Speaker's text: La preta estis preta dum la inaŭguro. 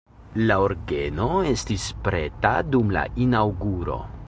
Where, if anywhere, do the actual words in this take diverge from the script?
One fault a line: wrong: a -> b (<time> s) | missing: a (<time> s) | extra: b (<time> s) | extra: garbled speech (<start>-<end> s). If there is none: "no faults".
wrong: preta -> orgeno (0.7 s)